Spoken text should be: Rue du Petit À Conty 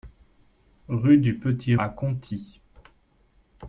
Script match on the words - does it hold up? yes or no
yes